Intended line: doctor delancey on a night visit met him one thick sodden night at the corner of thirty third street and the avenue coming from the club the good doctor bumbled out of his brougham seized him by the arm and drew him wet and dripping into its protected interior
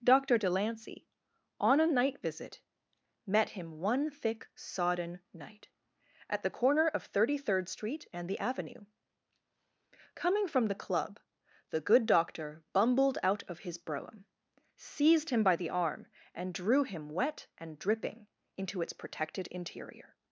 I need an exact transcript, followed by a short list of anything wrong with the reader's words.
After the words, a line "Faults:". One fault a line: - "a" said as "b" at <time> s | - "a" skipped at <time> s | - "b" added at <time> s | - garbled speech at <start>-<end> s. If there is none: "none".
doctor delancey on a night visit met him one thick sodden night at the corner of thirty third street and the avenue coming from the club the good doctor bumbled out of his brougham seized him by the arm and drew him wet and dripping into its protected interior
Faults:
none